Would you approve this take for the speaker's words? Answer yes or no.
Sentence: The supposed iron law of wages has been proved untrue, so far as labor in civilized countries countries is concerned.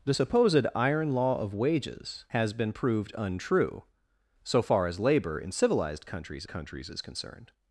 yes